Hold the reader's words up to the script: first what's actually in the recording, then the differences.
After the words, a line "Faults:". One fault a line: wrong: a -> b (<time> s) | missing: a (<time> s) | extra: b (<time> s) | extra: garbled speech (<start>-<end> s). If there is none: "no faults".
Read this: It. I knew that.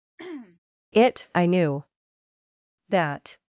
It. I knew that.
Faults:
no faults